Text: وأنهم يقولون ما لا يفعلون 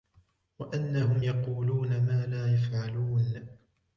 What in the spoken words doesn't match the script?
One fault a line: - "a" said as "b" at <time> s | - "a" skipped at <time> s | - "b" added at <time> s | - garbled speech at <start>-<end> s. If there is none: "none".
none